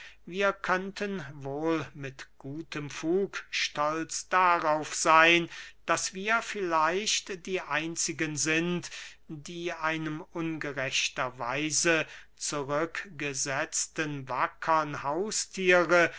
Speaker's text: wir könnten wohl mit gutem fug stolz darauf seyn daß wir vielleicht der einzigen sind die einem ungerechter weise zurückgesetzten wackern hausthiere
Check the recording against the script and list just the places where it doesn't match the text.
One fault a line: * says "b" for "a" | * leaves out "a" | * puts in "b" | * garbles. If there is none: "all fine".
* says "die" for "der"